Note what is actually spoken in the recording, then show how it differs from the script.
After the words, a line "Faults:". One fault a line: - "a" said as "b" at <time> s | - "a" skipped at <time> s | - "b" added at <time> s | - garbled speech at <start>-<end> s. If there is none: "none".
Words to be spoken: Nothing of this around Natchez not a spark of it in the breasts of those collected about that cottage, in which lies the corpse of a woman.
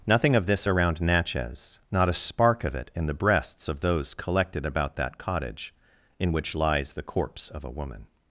Nothing of this around Natchez not a spark of it in the breasts of those collected about that cottage, in which lies the corpse of a woman.
Faults:
none